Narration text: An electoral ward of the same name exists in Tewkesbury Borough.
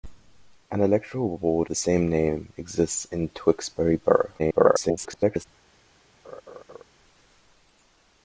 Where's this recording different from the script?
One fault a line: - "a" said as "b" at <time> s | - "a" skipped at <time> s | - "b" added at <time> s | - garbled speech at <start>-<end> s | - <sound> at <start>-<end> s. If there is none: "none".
- "of" skipped at 1.7 s
- garbled speech at 4.4-5.4 s
- laugh at 6.2-6.8 s